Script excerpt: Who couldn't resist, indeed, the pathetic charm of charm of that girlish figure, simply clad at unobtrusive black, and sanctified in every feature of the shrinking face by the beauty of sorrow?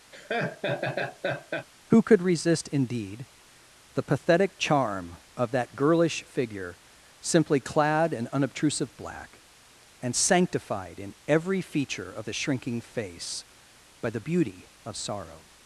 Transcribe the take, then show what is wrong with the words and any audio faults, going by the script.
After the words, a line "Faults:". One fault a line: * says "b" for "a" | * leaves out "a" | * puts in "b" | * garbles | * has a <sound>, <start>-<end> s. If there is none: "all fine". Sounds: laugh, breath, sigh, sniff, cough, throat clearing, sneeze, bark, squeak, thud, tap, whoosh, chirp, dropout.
Who could resist, indeed, the pathetic charm of that girlish figure, simply clad in unobtrusive black, and sanctified in every feature of the shrinking face by the beauty of sorrow?
Faults:
* has a laugh, 0.1-1.7 s
* says "could" for "couldn't"
* leaves out "charm of"
* says "in" for "at"